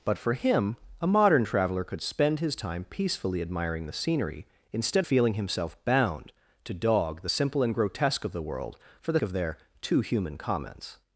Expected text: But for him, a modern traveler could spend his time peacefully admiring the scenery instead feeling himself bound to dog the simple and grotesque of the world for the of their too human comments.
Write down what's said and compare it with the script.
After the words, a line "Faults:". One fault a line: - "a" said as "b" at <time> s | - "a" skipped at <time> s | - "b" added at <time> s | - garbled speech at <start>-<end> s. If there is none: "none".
But for him, a modern traveler could spend his time peacefully admiring the scenery instead feeling himself bound to dog the simple and grotesque of the world for the of their too human comments.
Faults:
none